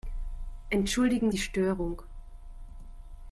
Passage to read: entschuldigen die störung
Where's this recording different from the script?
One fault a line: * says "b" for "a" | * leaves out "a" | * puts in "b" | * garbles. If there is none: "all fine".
all fine